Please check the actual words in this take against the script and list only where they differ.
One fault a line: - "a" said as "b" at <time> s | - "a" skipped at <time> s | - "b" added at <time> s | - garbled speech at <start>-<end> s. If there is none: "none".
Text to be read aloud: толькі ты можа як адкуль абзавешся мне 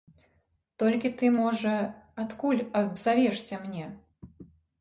- "як" skipped at 1.7 s